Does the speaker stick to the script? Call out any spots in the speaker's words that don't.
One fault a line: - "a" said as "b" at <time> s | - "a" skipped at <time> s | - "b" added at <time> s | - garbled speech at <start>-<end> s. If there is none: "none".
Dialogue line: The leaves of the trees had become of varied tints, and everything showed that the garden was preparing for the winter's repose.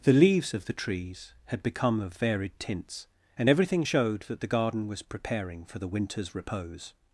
none